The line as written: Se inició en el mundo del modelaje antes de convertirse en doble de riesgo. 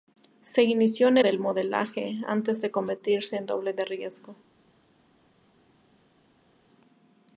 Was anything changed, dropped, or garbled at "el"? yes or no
yes